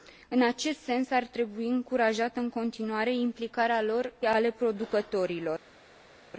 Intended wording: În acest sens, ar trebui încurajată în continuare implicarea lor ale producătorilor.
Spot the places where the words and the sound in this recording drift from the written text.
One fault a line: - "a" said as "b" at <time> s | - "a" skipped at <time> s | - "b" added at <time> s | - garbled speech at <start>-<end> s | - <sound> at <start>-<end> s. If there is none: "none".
none